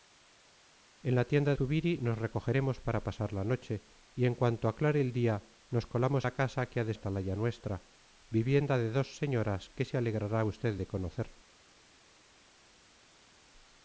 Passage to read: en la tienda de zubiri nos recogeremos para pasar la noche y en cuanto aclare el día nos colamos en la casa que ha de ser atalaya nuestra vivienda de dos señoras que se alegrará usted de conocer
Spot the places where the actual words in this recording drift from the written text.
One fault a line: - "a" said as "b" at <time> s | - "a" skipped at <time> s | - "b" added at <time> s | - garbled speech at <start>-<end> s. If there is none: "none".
- "de" skipped at 1.5 s
- "en" skipped at 6.3 s
- "ser" skipped at 6.9 s